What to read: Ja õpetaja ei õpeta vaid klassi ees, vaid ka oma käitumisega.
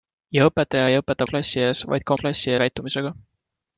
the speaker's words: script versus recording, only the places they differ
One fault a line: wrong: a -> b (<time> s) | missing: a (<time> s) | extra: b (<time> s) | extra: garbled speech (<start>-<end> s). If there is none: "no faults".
missing: vaid (1.3 s)
wrong: oma -> klassi (2.2 s)